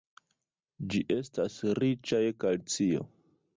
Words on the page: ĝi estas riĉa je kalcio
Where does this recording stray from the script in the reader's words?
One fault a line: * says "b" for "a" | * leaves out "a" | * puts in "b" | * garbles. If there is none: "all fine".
all fine